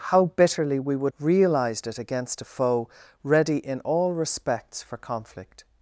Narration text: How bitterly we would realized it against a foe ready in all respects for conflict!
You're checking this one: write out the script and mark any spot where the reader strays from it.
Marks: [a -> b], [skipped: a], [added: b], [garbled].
How bitterly we would realized it against a foe ready in all respects for conflict!